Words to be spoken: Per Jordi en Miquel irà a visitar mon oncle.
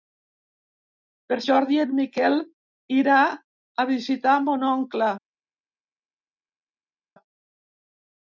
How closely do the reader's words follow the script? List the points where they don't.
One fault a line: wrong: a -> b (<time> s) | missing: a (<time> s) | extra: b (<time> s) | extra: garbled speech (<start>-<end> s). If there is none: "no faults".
no faults